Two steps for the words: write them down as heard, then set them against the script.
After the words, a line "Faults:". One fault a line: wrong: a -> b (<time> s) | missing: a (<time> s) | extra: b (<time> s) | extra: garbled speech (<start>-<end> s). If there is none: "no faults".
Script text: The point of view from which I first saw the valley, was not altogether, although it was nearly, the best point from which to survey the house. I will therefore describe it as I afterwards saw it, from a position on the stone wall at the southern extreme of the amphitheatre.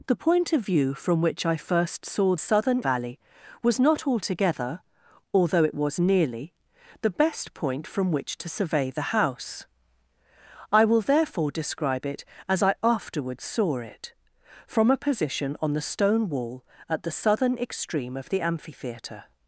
The point of view from which I first saw southern valley, was not altogether, although it was nearly, the best point from which to survey the house. I will therefore describe it as I afterwards saw it, from a position on the stone wall at the southern extreme of the amphitheatre.
Faults:
wrong: the -> southern (2.4 s)